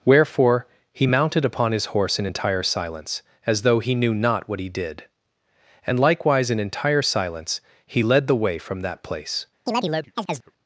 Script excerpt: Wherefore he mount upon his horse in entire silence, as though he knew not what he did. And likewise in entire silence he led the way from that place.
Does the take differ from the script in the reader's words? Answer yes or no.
yes